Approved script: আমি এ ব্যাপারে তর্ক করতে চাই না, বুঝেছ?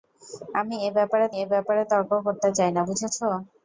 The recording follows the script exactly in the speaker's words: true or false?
false